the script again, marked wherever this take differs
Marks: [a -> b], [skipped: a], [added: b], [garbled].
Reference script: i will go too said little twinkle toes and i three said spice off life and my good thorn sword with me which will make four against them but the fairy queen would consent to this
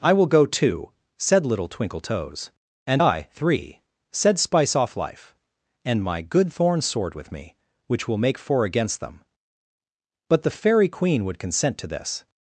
i will go too said little twinkle toes and i three said spice off life and my good thorn sword with me which will make four against them but the fairy queen would consent to this